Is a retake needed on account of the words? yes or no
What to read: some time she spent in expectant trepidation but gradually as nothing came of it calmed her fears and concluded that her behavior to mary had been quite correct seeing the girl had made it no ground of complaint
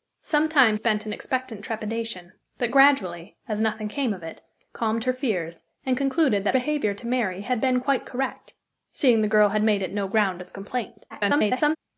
yes